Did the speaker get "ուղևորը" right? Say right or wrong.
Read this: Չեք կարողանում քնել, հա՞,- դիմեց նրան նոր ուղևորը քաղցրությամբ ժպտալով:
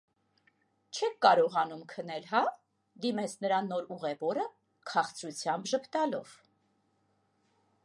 right